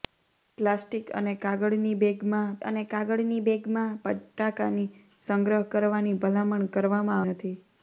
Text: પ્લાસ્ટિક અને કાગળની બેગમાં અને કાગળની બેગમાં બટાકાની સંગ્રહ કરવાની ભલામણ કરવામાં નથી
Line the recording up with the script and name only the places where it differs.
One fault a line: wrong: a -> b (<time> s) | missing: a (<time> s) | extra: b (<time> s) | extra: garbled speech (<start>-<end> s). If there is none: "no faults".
no faults